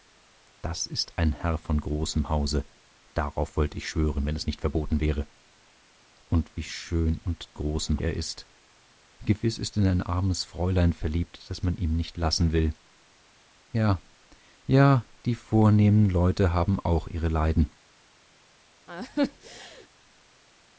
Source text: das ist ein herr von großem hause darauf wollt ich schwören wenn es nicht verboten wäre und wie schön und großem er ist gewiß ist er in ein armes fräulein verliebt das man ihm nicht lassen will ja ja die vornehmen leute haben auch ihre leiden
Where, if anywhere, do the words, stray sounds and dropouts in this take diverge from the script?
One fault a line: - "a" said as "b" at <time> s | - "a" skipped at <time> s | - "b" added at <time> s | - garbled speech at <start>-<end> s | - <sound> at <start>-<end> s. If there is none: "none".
- laugh at 18.9-19.9 s